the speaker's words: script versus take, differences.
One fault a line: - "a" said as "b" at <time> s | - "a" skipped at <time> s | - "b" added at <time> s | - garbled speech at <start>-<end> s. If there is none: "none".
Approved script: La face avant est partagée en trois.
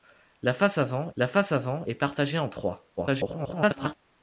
- "la face avant" added at 1.1 s
- garbled speech at 3.0-3.9 s